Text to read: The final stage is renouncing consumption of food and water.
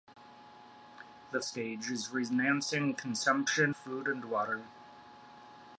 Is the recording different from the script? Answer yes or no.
yes